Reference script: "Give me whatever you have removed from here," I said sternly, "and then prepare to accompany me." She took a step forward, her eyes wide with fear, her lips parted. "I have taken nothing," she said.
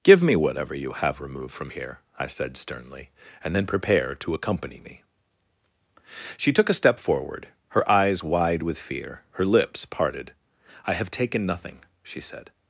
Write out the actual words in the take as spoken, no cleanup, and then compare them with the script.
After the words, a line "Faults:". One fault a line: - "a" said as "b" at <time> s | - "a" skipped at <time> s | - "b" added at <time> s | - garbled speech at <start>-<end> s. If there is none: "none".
"Give me whatever you have removed from here," I said sternly, "and then prepare to accompany me." She took a step forward, her eyes wide with fear, her lips parted. "I have taken nothing," she said.
Faults:
none